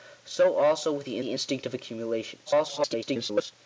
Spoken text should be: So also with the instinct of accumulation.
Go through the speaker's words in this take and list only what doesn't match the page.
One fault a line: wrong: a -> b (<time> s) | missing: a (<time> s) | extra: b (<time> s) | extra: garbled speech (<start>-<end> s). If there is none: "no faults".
extra: the (1.2 s)
extra: garbled speech (2.5-3.5 s)